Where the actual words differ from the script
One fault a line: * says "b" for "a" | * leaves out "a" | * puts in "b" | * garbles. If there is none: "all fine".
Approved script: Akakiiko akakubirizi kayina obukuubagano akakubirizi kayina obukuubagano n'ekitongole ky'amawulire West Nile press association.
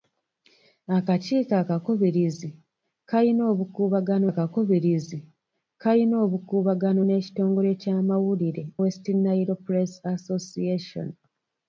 all fine